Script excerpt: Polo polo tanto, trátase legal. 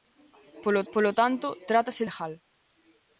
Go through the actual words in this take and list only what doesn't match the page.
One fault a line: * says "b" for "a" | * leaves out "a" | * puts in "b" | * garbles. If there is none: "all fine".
all fine